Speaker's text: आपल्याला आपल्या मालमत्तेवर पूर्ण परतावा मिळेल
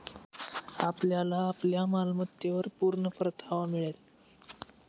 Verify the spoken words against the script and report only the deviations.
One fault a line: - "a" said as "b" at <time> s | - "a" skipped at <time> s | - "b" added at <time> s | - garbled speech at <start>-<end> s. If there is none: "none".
none